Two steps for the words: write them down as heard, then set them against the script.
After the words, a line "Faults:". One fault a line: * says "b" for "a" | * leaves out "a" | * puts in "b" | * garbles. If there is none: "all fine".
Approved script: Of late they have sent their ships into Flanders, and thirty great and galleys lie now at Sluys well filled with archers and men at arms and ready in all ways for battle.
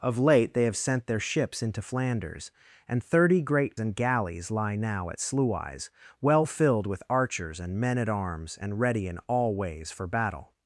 Of late they have sent their ships into Flanders, and thirty great and galleys lie now at Sluys well filled with archers and men at arms and ready in all ways for battle.
Faults:
all fine